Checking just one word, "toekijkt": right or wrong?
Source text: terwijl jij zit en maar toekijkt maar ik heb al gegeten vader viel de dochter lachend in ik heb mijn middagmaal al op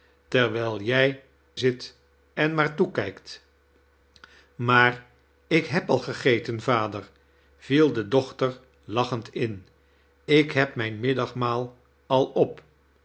right